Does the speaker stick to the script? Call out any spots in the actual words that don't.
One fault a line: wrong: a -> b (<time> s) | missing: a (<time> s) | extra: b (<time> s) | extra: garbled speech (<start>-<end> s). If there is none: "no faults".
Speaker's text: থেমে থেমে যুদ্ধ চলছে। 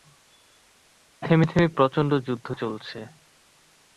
extra: প্রচণ্ড (1.8 s)